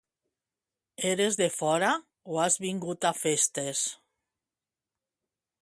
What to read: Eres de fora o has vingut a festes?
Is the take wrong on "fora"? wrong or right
right